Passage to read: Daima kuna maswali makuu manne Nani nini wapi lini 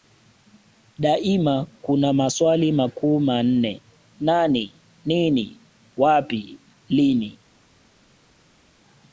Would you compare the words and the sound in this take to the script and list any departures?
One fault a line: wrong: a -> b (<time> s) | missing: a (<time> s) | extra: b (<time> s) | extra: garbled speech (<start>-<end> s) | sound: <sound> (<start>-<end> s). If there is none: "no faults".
no faults